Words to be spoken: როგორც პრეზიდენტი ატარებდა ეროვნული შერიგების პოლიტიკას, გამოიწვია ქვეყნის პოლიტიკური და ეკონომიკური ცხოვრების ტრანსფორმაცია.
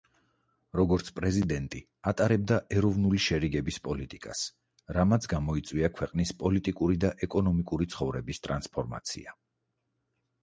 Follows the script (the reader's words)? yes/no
no